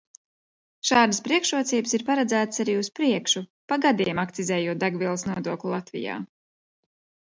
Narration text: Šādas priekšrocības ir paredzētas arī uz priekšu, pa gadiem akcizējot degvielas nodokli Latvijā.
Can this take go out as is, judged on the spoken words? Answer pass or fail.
pass